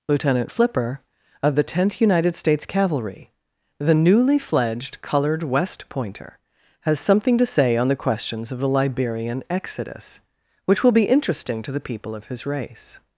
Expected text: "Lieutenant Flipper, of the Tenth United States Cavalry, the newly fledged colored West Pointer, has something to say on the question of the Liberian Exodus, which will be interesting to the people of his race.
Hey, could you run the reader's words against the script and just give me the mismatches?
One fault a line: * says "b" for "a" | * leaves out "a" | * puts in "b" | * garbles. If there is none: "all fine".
* says "questions" for "question"